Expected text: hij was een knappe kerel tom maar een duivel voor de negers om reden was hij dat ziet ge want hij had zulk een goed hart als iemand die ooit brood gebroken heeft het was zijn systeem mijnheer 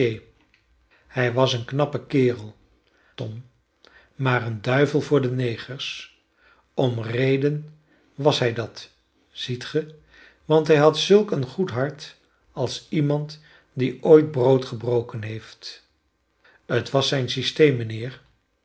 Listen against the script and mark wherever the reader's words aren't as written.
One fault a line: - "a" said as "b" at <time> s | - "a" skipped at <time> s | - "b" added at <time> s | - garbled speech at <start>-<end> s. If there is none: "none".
none